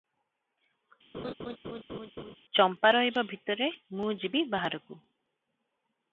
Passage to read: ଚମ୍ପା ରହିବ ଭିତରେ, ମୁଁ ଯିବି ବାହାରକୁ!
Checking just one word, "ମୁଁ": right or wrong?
right